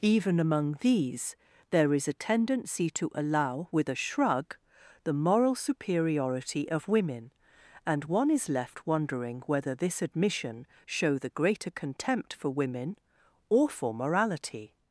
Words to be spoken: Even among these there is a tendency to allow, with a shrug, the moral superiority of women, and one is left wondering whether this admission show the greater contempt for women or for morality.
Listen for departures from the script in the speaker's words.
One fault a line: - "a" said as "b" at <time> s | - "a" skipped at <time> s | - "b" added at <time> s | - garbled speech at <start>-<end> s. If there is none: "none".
none